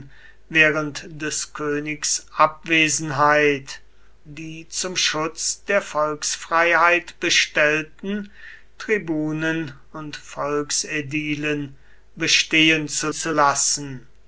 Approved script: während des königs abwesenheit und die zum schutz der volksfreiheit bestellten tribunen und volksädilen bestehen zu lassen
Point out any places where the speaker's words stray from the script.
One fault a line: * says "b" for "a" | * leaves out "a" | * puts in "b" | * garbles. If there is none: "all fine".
* leaves out "und"
* puts in "zu"